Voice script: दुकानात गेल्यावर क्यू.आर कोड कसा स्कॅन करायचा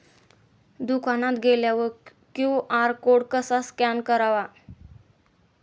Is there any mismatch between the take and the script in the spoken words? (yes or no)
no